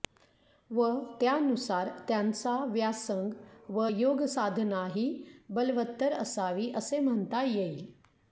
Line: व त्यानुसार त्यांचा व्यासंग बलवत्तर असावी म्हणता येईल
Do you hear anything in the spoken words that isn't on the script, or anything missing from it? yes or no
yes